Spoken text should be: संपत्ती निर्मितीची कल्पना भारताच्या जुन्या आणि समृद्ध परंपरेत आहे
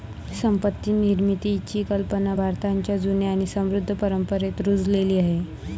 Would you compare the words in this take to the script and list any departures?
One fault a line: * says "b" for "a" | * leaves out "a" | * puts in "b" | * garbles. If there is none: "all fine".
* puts in "रुजलेली"